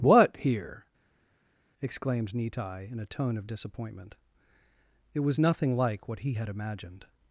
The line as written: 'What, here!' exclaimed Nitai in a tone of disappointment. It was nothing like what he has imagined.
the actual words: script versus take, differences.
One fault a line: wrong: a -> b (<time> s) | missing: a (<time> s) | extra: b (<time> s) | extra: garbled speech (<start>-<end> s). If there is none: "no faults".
wrong: has -> had (6.3 s)